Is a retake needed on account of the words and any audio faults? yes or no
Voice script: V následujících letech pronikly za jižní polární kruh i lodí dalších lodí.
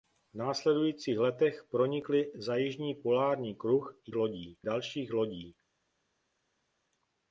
no